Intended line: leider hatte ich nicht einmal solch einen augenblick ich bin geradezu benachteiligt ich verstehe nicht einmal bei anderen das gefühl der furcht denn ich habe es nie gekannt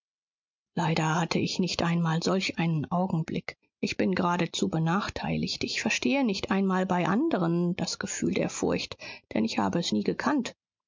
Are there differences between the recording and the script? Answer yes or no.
no